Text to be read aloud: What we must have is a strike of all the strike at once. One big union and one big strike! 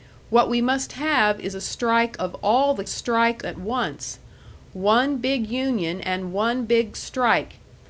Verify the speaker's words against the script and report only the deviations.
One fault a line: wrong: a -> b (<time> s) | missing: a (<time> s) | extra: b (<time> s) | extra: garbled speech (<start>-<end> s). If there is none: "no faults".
no faults